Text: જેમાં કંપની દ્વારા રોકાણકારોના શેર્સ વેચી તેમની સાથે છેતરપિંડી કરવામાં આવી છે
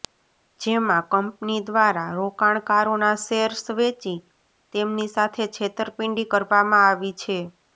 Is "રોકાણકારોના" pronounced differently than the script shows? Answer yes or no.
no